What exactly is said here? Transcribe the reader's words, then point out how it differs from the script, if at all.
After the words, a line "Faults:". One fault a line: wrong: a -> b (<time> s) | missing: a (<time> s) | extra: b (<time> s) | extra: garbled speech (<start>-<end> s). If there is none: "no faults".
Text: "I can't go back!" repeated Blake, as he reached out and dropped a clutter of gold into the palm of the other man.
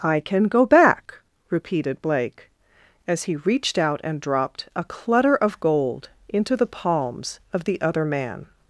"I can go back!" repeated Blake, as he reached out and dropped a clutter of gold into the palms of the other man.
Faults:
wrong: can't -> can (0.2 s)
wrong: palm -> palms (6.7 s)